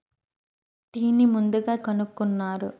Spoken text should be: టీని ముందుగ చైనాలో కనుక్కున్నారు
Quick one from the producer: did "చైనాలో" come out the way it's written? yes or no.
no